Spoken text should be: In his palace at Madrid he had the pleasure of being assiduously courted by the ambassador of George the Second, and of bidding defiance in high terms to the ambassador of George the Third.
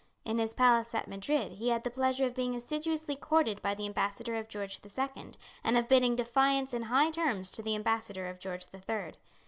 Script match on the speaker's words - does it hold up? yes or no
yes